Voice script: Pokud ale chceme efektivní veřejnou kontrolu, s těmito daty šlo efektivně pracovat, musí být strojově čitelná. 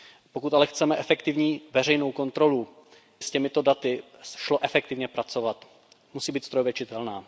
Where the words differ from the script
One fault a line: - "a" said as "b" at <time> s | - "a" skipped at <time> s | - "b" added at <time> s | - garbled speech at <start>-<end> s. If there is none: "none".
none